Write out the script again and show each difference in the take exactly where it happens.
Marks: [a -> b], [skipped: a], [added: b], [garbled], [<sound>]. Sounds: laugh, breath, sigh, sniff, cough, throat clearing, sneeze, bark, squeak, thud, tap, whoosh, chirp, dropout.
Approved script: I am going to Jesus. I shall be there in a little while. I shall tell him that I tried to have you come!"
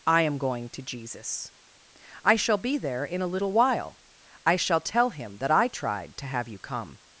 I am going to Jesus. I shall be there in a little while. I shall tell him that I tried to have you come!"